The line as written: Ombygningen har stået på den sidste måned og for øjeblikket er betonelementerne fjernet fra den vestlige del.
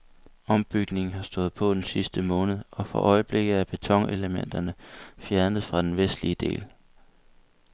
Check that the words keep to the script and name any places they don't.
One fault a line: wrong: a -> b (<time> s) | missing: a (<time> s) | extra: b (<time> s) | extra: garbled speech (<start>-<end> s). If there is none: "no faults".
no faults